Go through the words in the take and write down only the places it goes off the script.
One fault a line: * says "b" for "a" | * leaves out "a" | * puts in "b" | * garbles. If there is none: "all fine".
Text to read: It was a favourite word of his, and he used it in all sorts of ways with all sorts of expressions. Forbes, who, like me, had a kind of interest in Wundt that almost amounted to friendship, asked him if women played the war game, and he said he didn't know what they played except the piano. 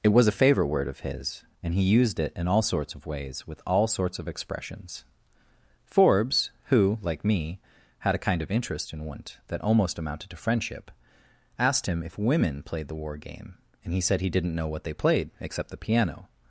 all fine